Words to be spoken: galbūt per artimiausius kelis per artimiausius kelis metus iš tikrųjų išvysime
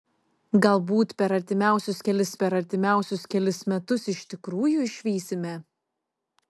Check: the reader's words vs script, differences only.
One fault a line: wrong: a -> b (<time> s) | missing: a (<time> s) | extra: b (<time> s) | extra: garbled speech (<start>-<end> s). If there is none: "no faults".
no faults